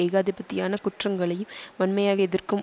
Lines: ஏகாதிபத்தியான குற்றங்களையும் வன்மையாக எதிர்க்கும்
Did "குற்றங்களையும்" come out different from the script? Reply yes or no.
no